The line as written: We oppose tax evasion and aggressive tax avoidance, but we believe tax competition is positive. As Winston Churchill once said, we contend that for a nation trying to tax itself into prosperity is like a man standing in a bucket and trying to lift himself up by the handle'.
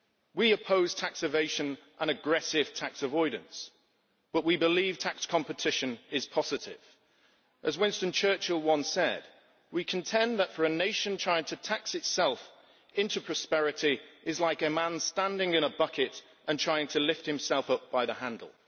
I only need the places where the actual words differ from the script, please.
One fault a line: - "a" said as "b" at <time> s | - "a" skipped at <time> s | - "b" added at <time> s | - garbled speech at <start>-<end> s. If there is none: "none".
none